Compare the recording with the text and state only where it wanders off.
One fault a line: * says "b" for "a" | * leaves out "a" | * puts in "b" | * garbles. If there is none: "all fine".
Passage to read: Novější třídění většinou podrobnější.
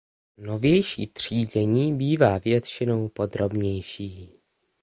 * puts in "bývá"